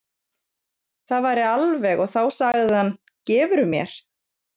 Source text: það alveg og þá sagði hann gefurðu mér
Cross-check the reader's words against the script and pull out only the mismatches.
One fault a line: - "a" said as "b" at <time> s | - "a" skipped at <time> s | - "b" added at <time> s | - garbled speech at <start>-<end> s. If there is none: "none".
- "væri" added at 1.2 s